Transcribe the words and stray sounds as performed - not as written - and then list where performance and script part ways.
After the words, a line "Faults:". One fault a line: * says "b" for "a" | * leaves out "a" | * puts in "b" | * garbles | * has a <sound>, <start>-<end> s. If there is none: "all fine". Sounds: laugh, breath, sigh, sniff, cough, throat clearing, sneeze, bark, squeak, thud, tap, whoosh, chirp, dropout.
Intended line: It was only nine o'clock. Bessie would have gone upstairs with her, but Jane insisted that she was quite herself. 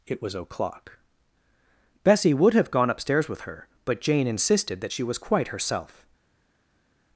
It was o'clock. Bessie would have gone upstairs with her, but Jane insisted that she was quite herself.
Faults:
* leaves out "only nine"